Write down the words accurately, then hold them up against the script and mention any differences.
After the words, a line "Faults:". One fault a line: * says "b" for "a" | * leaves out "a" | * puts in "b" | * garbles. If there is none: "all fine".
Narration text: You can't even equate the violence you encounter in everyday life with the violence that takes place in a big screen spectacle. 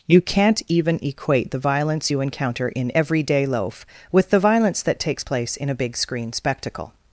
You can't even equate the violence you encounter in everyday loaf with the violence that takes place in a big screen spectacle.
Faults:
* says "loaf" for "life"